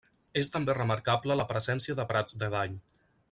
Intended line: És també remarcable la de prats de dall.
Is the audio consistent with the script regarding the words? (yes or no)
no